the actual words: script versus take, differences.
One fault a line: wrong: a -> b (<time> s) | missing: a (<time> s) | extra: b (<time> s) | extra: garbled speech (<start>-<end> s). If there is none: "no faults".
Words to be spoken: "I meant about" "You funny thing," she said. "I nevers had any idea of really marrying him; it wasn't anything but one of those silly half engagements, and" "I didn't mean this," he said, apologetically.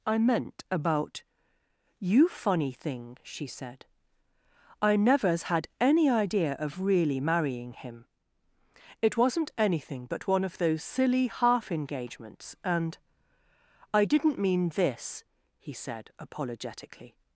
no faults